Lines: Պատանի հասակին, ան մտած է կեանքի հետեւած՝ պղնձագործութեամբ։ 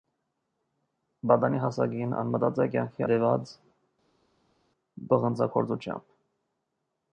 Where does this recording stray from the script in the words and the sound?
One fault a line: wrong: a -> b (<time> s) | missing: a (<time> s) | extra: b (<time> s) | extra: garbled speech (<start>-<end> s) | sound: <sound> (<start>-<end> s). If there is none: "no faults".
no faults